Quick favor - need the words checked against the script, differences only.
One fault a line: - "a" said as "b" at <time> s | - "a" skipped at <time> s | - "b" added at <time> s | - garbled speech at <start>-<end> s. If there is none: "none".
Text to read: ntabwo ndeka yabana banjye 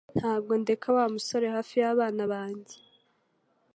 - "wa musore hafi" added at 1.0 s